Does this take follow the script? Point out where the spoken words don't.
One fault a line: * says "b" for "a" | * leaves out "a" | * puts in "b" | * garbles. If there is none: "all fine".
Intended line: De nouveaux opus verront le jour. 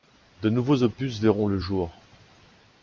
all fine